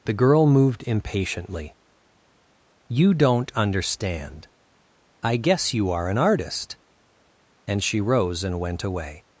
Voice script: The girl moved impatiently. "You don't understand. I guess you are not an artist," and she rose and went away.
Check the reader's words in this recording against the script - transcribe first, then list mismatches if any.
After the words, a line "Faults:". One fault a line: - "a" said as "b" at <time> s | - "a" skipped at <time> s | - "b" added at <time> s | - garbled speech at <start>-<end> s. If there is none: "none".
The girl moved impatiently. "You don't understand. I guess you are an artist," and she rose and went away.
Faults:
- "not" skipped at 6.1 s